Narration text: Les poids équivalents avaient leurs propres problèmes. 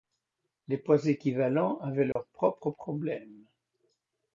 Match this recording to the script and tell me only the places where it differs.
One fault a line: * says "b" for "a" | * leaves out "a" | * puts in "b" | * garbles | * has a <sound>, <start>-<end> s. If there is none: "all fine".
* has a dropout, 2.1-2.2 s